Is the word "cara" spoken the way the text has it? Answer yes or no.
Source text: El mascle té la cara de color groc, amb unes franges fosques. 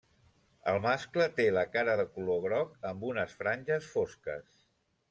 yes